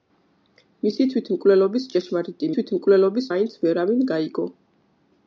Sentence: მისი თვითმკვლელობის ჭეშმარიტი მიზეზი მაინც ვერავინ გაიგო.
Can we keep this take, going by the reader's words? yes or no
no